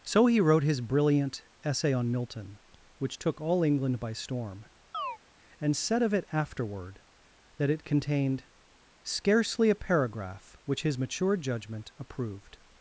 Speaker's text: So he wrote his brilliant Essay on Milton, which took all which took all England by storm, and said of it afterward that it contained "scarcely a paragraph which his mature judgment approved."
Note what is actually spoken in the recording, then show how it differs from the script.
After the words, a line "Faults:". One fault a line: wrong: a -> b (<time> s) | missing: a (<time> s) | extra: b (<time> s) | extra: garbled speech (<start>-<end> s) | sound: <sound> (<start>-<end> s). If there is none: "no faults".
So he wrote his brilliant Essay on Milton, which took all England by storm, and said of it afterward that it contained "scarcely a paragraph which his mature judgment approved."
Faults:
missing: which took all (3.6 s)
sound: chirp (4.9-5.2 s)